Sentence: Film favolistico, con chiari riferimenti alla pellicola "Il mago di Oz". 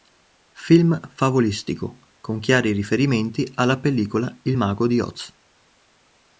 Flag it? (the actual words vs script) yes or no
no